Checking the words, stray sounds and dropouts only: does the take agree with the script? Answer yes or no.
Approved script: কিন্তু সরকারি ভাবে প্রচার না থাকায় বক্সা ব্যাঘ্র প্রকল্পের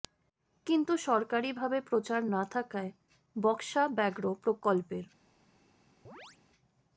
no